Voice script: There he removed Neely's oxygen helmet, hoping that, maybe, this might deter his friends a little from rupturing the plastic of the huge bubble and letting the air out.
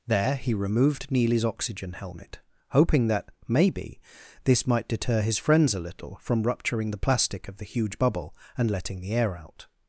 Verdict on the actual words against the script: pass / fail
pass